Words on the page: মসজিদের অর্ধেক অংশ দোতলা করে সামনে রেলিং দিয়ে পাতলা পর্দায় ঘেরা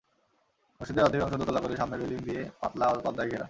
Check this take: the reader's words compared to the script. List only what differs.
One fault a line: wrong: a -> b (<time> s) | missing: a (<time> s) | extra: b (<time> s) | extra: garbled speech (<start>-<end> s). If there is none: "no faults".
no faults